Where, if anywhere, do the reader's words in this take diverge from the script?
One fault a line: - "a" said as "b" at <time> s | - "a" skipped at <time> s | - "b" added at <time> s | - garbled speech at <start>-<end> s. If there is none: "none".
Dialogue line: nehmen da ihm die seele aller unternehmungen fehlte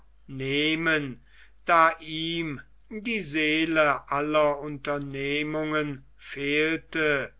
none